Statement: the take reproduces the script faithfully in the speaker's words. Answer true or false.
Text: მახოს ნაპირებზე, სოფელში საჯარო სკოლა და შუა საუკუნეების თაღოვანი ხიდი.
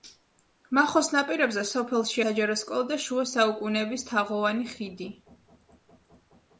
true